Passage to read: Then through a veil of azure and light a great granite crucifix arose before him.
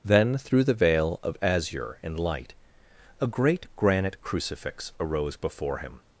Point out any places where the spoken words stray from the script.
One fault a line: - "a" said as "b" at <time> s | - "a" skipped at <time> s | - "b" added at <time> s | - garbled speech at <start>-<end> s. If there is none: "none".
- "a" said as "the" at 0.6 s